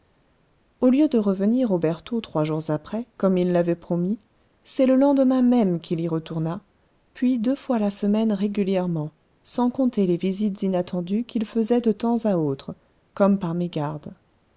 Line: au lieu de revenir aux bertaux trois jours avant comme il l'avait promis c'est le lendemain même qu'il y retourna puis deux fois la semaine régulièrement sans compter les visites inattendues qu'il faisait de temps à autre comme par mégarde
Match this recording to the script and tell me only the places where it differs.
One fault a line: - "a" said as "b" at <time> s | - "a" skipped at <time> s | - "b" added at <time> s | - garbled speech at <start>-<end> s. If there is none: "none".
- "avant" said as "après" at 2.7 s